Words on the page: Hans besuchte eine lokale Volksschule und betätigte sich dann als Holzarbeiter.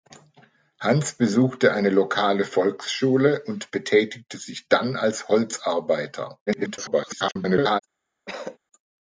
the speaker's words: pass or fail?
fail